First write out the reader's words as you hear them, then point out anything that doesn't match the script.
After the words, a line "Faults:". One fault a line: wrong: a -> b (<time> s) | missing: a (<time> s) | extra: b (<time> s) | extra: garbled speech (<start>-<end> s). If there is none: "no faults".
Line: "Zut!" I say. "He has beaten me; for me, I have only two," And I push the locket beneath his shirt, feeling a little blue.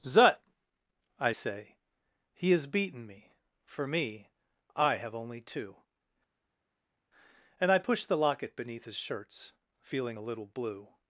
"Zut!" I say. "He has beaten me; for me, I have only two," And I push the locket beneath his shirts, feeling a little blue.
Faults:
wrong: shirt -> shirts (9.0 s)